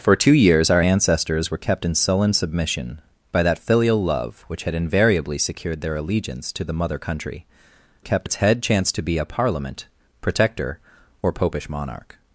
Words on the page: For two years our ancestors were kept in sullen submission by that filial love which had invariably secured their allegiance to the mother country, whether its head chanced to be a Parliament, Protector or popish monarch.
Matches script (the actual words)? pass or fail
fail